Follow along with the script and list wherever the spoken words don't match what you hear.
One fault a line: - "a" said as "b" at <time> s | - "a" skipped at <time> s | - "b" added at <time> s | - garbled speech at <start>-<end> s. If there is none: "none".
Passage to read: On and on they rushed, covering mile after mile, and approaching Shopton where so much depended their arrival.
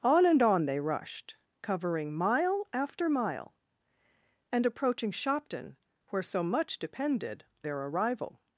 none